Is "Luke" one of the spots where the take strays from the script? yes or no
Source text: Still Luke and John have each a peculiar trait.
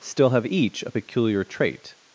yes